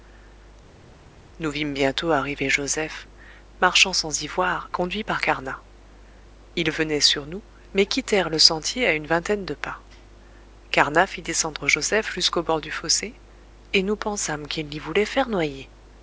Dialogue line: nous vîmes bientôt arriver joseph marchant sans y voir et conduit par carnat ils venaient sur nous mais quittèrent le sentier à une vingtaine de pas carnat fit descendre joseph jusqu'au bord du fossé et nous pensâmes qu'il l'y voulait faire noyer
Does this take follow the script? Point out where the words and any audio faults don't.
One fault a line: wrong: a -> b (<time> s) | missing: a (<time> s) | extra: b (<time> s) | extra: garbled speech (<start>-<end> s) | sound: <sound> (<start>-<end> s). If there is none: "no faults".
missing: et (4.7 s)